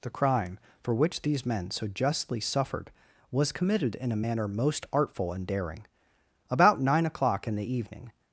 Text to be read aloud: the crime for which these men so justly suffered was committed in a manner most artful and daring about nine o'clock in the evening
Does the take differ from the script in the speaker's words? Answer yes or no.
no